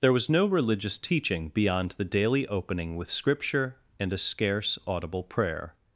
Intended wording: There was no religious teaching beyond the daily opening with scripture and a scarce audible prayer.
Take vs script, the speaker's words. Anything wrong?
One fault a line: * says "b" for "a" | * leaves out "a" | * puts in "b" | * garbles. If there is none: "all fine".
all fine